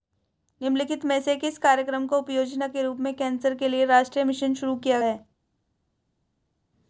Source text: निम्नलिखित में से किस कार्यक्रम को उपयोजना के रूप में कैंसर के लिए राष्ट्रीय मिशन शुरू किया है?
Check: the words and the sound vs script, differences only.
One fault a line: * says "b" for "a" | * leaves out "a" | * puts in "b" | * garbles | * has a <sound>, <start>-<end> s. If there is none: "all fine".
all fine